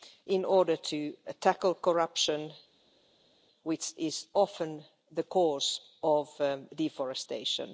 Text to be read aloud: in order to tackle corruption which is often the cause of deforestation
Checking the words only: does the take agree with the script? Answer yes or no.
yes